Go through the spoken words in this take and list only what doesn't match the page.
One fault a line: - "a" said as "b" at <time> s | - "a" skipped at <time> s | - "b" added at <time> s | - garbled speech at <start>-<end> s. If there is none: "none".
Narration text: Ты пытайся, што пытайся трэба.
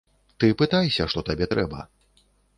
- "пытайся" said as "табе" at 1.3 s